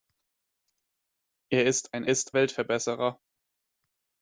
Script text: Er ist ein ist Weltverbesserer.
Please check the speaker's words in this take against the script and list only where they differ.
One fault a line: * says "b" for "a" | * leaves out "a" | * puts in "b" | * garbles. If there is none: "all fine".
all fine